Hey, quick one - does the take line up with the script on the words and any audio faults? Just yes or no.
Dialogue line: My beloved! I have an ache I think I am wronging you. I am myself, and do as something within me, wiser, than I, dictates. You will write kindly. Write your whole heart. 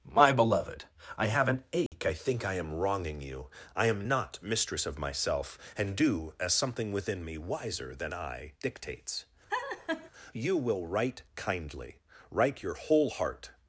no